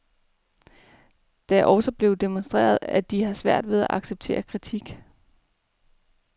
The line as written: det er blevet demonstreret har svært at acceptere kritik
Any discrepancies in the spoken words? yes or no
yes